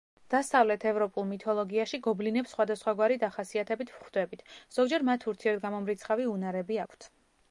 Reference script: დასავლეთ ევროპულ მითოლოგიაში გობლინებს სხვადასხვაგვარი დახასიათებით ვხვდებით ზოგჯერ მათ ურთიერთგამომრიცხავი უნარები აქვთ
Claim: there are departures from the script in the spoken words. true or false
false